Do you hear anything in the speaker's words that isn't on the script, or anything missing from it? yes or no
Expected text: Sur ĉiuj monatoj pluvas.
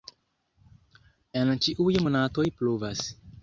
yes